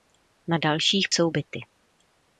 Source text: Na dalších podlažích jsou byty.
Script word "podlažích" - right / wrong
wrong